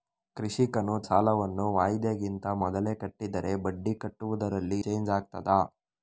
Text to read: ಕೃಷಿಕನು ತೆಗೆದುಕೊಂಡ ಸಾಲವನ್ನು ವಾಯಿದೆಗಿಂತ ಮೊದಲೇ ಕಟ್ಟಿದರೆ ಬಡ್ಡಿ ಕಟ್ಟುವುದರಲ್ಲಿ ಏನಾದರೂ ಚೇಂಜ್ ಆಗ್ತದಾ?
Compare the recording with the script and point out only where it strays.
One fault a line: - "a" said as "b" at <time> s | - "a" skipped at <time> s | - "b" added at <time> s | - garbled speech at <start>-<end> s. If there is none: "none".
- "ತೆಗೆದುಕೊಂಡ" skipped at 0.9 s
- "ಏನಾದರೂ" skipped at 4.8 s